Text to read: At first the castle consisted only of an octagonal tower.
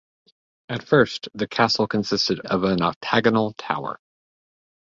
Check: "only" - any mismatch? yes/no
yes